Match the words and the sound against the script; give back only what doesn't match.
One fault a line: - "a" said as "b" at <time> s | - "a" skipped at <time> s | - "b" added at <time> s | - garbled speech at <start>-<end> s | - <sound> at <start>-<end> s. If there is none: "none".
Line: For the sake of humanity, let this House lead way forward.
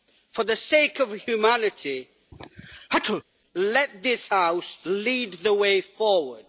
- sneeze at 2.3-3.2 s
- "the" added at 5.3 s